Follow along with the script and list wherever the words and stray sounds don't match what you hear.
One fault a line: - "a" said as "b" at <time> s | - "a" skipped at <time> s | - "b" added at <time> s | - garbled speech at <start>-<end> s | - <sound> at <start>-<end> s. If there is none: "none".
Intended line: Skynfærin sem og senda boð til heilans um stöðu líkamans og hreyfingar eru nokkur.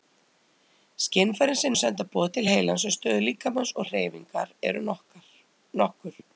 none